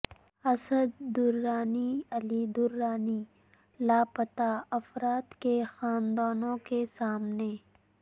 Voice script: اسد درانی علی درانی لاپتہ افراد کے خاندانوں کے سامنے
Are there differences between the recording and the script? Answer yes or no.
no